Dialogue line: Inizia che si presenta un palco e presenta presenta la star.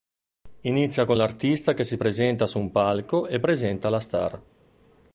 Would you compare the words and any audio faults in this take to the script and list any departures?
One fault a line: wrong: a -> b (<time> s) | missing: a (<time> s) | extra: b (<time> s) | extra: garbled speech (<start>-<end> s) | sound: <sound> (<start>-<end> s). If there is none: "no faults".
extra: con l'artista (1.0 s)
extra: su (2.5 s)
missing: presenta (3.9 s)